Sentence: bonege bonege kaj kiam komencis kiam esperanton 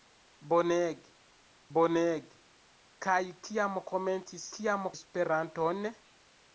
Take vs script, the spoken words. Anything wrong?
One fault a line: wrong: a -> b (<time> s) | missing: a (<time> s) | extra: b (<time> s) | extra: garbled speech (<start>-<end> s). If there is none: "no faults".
no faults